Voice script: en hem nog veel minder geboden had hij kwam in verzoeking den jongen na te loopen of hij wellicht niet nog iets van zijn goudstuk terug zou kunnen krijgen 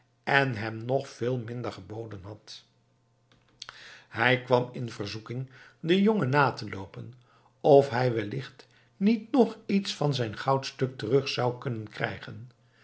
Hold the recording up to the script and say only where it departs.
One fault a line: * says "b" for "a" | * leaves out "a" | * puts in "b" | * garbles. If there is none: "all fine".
all fine